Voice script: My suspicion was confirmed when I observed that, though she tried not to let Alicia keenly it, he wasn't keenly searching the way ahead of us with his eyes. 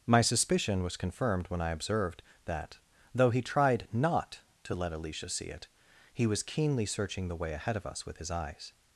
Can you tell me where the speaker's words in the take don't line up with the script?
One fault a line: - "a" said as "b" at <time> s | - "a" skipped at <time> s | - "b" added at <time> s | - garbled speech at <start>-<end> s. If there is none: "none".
- "she" said as "he" at 3.3 s
- "keenly" said as "see" at 5.3 s
- "wasn't" said as "was" at 6.3 s